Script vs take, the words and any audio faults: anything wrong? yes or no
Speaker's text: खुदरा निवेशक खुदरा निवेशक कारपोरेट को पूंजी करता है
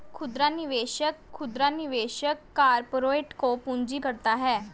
no